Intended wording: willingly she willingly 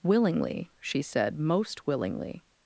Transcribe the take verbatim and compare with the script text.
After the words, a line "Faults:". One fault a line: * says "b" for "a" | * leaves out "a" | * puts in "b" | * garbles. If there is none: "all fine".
willingly she said most willingly
Faults:
* puts in "said most"